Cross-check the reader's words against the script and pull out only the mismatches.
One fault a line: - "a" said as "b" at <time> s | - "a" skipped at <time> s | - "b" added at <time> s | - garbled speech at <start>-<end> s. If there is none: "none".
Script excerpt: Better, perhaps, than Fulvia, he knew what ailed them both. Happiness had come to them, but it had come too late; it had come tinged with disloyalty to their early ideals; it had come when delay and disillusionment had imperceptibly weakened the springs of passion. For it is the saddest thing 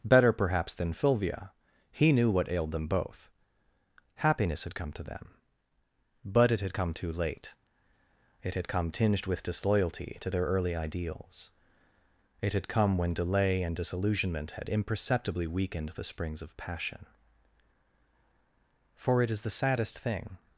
none